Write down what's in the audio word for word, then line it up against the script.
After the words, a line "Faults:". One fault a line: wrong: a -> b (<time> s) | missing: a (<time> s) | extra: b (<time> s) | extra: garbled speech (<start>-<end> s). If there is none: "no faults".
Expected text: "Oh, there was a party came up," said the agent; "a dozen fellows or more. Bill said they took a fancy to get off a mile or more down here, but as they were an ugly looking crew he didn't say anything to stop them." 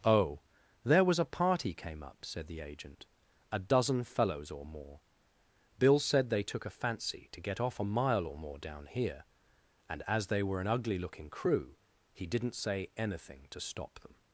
"Oh, there was a party came up," said the agent; "a dozen fellows or more. Bill said they took a fancy to get off a mile or more down here, and as they were an ugly looking crew he didn't say anything to stop them."
Faults:
wrong: but -> and (9.9 s)